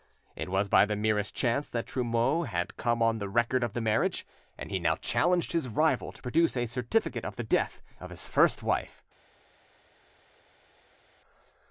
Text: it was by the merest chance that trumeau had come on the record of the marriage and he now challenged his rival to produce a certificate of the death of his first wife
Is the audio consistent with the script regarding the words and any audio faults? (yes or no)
yes